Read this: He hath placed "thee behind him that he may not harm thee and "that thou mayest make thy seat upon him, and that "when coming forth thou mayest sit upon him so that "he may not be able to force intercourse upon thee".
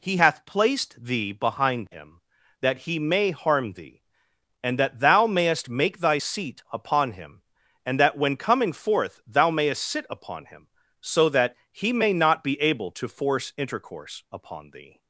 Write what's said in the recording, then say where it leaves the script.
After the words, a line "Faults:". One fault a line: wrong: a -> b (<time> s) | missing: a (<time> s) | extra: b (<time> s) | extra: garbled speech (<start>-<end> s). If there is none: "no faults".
He hath placed "thee behind him that he may harm thee and "that thou mayest make thy seat upon him, and that "when coming forth thou mayest sit upon him so that "he may not be able to force intercourse upon thee".
Faults:
missing: not (3.3 s)